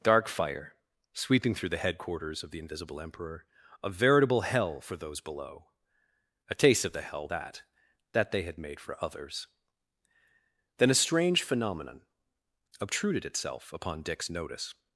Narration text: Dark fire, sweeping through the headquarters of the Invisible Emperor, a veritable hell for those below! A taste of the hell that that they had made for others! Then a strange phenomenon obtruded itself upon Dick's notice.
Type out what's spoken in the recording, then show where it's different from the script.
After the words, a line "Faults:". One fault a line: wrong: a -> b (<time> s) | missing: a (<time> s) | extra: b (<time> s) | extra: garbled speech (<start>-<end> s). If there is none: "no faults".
Dark fire, sweeping through the headquarters of the Invisible Emperor, a veritable hell for those below! A taste of the hell that that they had made for others! Then a strange phenomenon obtruded itself upon Dick's notice.
Faults:
no faults